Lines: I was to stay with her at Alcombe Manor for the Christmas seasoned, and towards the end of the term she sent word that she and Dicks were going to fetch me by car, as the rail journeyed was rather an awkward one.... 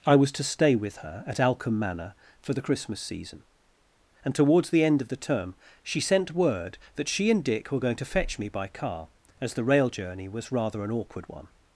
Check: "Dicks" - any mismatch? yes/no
yes